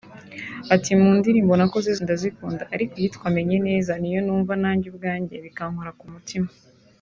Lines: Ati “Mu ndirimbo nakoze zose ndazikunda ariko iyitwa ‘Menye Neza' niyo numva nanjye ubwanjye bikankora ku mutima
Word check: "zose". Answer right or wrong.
wrong